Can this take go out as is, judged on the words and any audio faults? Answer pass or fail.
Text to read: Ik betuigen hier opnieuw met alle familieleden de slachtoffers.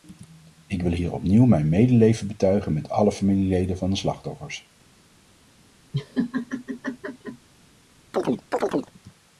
fail